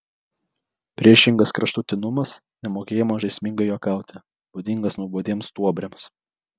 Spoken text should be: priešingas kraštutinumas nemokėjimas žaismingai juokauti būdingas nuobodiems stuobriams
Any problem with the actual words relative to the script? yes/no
no